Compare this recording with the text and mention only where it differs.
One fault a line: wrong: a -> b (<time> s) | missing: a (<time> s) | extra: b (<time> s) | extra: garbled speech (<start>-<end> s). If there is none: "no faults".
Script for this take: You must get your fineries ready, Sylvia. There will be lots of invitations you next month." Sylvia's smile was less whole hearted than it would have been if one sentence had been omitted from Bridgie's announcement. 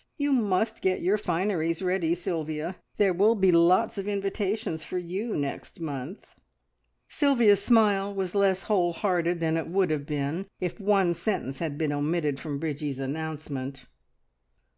extra: for (4.8 s)